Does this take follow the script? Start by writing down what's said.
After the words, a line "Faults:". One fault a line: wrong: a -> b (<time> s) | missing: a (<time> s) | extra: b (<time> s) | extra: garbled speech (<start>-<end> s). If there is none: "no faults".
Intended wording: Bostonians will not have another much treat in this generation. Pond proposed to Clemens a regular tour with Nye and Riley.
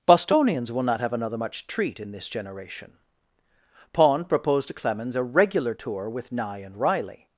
Bostonians will not have another much treat in this generation. Pond proposed to Clemens a regular tour with Nye and Riley.
Faults:
no faults